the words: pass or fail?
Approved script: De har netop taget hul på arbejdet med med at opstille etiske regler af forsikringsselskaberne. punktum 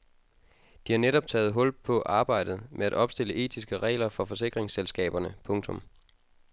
fail